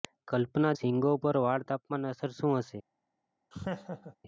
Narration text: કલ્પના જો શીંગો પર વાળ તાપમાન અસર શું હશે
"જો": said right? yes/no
no